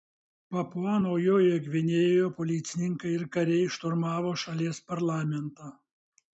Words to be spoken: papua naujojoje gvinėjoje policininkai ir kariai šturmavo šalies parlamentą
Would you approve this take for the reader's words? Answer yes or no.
yes